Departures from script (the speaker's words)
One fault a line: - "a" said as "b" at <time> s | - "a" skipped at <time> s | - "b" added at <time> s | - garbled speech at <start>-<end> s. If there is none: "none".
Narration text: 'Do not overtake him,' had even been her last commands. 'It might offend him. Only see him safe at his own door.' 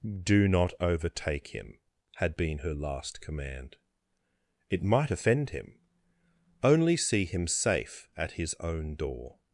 - "even" skipped at 2.3 s
- "commands" said as "command" at 3.2 s